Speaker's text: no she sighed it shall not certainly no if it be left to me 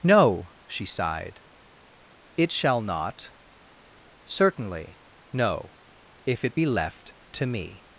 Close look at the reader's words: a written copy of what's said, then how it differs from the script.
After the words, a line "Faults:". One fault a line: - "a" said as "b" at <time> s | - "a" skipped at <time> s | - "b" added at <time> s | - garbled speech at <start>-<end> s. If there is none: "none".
no she sighed it shall not certainly no if it be left to me
Faults:
none